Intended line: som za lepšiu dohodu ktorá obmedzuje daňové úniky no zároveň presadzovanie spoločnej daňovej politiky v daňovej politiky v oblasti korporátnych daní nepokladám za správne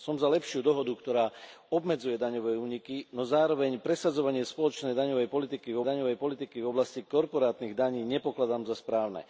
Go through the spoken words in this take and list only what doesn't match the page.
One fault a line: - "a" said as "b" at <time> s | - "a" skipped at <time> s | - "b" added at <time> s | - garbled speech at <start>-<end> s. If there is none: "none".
none